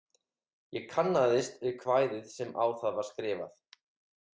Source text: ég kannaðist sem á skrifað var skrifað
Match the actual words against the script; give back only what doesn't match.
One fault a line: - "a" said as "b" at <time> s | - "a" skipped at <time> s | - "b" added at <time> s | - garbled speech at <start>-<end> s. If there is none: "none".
- "við kvæðið" added at 1.7 s
- "skrifað" said as "það" at 2.8 s